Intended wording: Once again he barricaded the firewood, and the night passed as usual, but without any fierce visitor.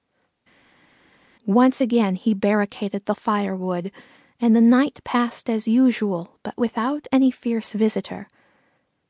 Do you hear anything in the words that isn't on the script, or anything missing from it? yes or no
no